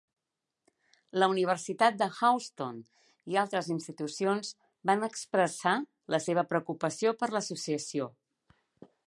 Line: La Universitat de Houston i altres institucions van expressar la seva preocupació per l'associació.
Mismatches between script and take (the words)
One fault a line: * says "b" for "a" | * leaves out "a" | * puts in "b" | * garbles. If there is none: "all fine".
all fine